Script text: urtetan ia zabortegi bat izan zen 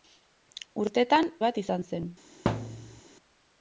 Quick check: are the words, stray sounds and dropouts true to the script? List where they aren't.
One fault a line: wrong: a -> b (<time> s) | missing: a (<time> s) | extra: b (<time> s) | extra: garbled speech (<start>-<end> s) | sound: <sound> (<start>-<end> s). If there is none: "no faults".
missing: ia zabortegi (1.3 s)
sound: thud (2.5-3.0 s)